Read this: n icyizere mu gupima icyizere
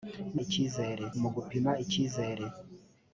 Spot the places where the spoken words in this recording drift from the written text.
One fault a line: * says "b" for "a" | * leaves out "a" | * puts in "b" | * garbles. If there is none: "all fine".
all fine